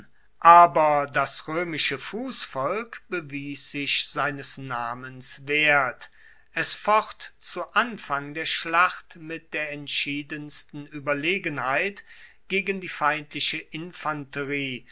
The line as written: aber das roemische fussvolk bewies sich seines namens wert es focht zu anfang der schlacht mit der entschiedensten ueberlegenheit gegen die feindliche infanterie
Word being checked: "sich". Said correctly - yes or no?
yes